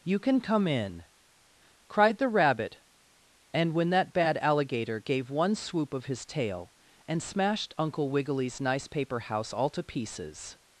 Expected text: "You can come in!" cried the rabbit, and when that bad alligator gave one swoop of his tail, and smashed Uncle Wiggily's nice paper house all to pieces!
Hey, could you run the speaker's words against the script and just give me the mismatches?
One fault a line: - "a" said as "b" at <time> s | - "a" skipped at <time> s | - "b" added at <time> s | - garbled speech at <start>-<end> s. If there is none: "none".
none